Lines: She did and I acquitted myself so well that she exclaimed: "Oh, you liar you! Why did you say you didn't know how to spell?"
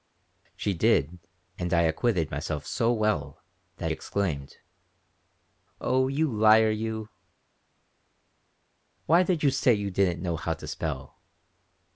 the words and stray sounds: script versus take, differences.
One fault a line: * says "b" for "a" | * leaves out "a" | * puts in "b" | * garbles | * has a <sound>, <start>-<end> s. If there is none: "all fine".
* leaves out "she"